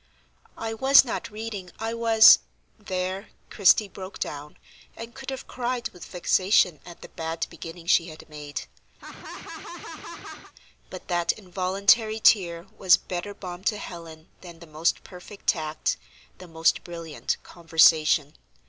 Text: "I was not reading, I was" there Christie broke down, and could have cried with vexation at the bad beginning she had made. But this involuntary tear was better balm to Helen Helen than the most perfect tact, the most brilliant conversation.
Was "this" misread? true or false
true